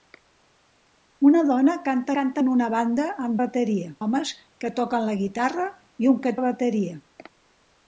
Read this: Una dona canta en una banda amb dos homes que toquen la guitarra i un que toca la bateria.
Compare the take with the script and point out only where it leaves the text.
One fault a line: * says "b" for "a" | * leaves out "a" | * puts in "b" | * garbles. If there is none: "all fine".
* puts in "canta"
* says "bateria" for "dos"
* leaves out "toca"